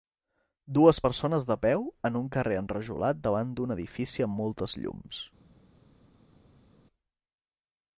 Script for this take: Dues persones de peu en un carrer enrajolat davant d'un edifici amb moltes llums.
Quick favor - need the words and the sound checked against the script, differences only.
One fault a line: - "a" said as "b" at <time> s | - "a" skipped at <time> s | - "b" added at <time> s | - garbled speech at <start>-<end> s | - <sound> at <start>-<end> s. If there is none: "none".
none